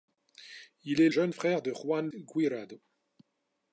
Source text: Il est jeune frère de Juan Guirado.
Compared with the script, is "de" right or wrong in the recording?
right